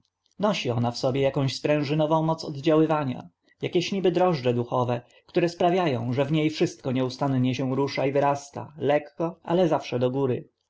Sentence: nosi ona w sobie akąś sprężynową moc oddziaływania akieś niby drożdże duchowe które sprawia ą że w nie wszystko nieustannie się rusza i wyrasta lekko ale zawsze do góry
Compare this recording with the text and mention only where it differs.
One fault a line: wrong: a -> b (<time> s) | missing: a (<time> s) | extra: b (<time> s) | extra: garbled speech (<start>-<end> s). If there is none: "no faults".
no faults